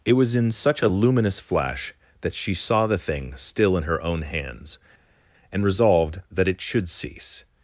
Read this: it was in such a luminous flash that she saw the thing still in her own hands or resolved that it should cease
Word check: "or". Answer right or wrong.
wrong